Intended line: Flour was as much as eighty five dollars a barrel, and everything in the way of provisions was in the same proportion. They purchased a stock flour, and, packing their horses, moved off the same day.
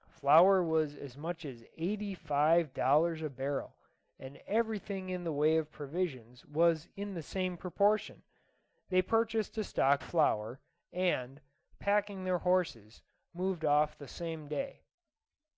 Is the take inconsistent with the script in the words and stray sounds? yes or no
no